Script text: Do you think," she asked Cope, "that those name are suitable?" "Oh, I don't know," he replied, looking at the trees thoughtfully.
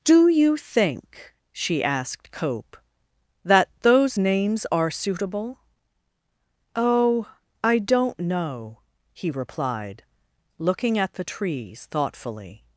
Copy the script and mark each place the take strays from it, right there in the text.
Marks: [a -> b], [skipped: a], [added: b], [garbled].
Do you think," she asked Cope, "that those [name -> names] are suitable?" "Oh, I don't know," he replied, looking at the trees thoughtfully.